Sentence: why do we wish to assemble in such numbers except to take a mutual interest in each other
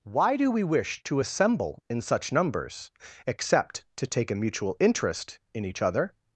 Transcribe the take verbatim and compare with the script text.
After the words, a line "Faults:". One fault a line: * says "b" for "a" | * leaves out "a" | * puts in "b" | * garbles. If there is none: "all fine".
why do we wish to assemble in such numbers except to take a mutual interest in each other
Faults:
all fine